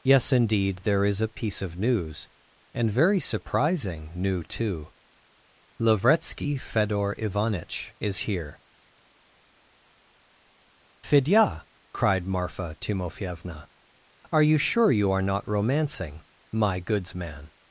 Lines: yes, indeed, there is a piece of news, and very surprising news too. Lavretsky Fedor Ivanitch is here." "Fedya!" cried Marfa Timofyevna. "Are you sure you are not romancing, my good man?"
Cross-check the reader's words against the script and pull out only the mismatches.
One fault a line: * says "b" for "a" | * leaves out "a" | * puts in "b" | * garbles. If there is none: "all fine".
* says "new" for "news"
* says "goods" for "good"